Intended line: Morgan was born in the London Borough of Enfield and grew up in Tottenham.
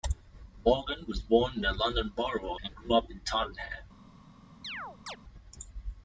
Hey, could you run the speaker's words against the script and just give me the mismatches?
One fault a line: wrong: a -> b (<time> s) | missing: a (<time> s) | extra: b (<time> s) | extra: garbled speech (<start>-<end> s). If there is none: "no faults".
missing: of Enfield (2.5 s)